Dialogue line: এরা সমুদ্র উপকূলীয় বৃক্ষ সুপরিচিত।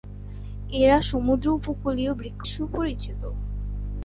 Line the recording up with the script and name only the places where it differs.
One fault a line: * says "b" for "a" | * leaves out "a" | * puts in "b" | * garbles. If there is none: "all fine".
all fine